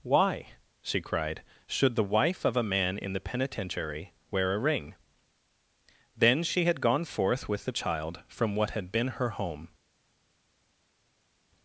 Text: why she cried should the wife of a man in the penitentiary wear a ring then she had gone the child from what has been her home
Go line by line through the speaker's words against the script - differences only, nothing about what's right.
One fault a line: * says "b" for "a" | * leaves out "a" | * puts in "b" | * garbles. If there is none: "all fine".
* puts in "forth with"
* says "had" for "has"